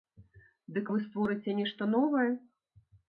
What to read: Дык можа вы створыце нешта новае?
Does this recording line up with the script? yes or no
no